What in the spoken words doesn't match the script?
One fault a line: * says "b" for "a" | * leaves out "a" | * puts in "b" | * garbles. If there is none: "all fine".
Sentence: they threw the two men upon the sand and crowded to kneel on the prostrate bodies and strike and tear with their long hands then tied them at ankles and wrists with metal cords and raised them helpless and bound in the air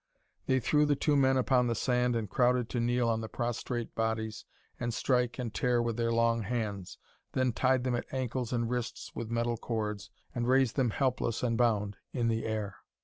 all fine